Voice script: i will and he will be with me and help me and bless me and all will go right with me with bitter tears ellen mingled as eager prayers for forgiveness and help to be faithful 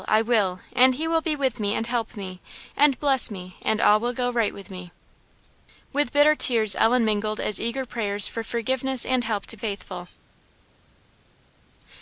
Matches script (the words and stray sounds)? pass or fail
fail